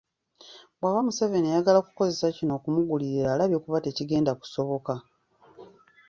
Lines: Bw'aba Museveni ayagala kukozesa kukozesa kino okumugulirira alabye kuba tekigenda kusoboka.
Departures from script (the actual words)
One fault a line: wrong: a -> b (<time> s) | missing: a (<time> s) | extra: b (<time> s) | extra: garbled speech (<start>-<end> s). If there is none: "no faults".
missing: kukozesa (2.3 s)